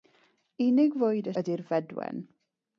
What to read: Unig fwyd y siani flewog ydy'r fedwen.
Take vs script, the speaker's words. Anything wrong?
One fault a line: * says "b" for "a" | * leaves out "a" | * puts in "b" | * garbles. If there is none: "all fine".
* leaves out "siani flewog"